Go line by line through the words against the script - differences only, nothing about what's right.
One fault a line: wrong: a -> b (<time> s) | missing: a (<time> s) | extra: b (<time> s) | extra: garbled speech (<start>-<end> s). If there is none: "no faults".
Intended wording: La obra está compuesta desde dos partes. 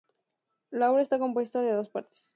wrong: desde -> de (1.6 s)